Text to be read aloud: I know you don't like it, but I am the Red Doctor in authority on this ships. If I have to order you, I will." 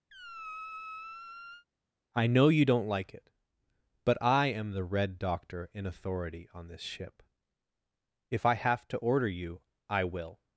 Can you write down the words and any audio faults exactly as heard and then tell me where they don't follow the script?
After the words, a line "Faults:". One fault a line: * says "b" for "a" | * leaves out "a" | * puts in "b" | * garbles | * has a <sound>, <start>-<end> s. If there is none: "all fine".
I know you don't like it, but I am the Red Doctor in authority on this ship. If I have to order you, I will."
Faults:
* has a squeak, 0.1-1.7 s
* says "ship" for "ships"